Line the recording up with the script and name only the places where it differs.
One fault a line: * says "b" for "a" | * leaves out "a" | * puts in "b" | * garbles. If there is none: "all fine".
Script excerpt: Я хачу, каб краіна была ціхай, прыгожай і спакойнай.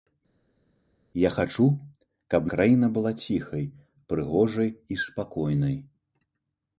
all fine